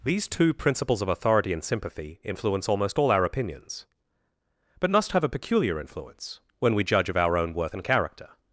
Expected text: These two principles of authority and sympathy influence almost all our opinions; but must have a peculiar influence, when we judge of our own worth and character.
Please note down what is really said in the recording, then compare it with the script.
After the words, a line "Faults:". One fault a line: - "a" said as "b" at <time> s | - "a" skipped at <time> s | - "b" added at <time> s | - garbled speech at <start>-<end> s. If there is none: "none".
These two principles of authority and sympathy influence almost all our opinions; but must have a peculiar influence, when we judge of our own worth and character.
Faults:
none